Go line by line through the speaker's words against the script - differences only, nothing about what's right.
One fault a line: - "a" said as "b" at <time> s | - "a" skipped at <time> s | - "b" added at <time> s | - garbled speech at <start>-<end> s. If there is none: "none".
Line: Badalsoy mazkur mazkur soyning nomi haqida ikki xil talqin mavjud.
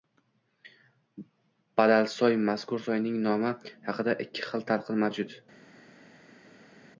- "mazkur" skipped at 2.8 s